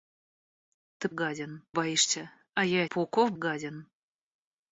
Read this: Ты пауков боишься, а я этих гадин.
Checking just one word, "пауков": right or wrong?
wrong